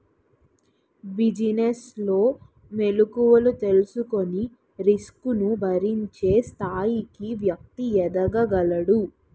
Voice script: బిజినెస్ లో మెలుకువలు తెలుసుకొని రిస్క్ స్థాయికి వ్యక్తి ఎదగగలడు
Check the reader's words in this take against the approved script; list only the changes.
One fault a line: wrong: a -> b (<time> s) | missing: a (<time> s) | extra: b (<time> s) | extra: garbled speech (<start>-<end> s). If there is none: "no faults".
extra: ను భరించే (5.3 s)